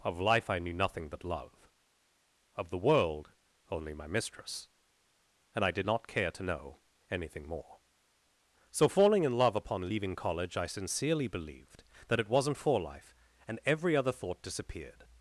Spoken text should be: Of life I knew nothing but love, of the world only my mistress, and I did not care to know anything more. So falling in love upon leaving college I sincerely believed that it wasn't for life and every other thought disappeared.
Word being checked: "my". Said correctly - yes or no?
yes